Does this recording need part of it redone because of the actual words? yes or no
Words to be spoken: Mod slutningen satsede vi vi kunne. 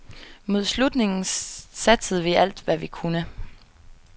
yes